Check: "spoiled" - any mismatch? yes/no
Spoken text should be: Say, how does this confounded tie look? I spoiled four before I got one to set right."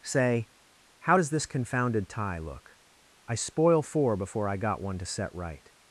yes